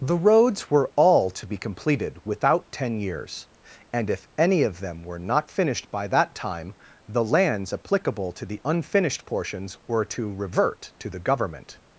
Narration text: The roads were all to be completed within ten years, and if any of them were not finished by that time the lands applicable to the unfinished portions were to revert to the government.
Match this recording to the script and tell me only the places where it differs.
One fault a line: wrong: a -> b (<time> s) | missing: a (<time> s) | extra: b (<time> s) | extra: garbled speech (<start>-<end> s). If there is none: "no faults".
wrong: within -> without (2.2 s)